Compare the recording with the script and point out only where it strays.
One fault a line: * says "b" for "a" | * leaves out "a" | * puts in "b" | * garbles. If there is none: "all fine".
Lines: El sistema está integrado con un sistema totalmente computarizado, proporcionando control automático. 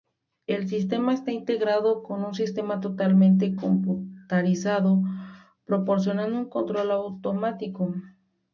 * puts in "un"